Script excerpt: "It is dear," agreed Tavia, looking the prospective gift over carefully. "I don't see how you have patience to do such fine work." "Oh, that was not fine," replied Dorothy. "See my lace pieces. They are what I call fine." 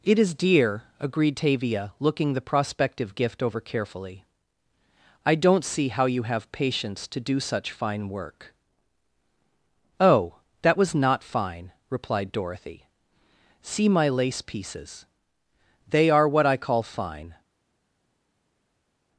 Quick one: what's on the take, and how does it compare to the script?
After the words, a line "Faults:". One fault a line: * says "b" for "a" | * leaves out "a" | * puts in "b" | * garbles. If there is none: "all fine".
"It is dear," agreed Tavia, looking the prospective gift over carefully. "I don't see how you have patience to do such fine work." "Oh, that was not fine," replied Dorothy. "See my lace pieces. They are what I call fine."
Faults:
all fine